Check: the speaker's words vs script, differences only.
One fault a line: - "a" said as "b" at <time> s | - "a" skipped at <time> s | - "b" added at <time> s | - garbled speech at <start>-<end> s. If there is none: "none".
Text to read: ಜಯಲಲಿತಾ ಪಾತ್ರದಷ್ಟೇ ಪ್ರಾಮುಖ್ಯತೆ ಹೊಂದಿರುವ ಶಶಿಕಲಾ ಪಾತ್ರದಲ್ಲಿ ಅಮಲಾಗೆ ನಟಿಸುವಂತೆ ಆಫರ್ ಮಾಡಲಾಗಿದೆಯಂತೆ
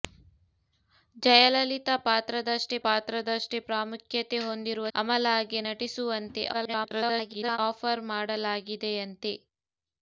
- "ಪಾತ್ರದಷ್ಟೇ" added at 2.8 s
- "ಶಶಿಕಲಾ ಪಾತ್ರದಲ್ಲಿ" skipped at 4.9 s
- garbled speech at 6.5-7.6 s